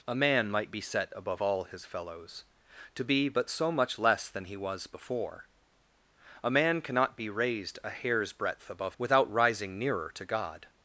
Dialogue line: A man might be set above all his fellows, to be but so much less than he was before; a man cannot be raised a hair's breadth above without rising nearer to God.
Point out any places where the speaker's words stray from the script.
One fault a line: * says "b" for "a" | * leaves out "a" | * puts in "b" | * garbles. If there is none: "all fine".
all fine